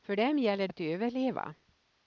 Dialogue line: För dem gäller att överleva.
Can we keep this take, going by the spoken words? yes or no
yes